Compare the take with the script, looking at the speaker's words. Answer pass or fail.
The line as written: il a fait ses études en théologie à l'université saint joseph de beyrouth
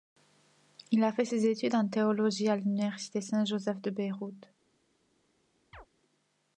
pass